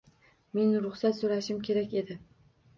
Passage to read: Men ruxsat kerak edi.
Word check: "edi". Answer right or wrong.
right